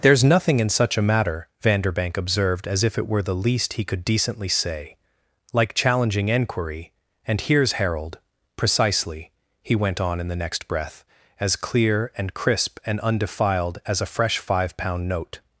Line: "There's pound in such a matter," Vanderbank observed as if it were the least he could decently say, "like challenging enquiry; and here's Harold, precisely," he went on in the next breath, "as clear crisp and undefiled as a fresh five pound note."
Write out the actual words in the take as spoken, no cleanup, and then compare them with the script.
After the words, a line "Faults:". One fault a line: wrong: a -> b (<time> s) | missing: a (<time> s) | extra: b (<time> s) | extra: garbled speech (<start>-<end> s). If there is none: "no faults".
"There's nothing in such a matter," Vanderbank observed as if it were the least he could decently say, "like challenging enquiry; and here's Harold, precisely," he went on in the next breath, "as clear and crisp and undefiled as a fresh five pound note."
Faults:
wrong: pound -> nothing (0.2 s)
extra: and (12.2 s)